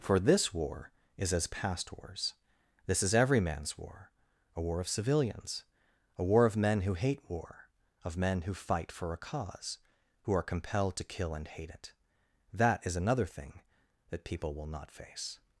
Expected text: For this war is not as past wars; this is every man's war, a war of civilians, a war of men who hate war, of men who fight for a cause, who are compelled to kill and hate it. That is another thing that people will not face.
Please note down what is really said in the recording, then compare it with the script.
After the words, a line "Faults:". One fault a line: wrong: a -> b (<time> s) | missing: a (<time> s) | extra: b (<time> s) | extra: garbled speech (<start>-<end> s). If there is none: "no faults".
For this war is as past wars; this is every man's war, a war of civilians, a war of men who hate war, of men who fight for a cause, who are compelled to kill and hate it. That is another thing that people will not face.
Faults:
missing: not (1.3 s)